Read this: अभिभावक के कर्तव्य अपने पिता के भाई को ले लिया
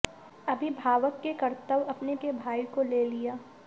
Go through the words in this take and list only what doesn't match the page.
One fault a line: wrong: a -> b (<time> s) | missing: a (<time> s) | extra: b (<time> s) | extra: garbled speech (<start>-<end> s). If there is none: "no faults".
missing: पिता (2.1 s)